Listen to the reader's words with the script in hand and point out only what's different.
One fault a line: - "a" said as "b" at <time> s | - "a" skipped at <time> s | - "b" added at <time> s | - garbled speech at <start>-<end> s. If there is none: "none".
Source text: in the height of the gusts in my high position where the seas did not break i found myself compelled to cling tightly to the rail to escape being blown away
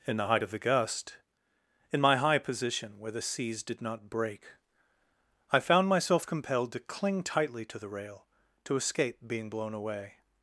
- "gusts" said as "gust" at 0.6 s